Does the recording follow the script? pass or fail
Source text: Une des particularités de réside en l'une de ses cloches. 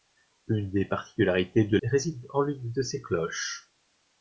pass